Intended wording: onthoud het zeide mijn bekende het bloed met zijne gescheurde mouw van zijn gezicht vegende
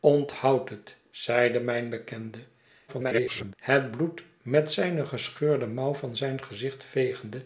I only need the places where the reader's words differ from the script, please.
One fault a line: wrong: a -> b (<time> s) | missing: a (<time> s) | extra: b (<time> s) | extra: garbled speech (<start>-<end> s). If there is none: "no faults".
extra: garbled speech (2.9-3.5 s)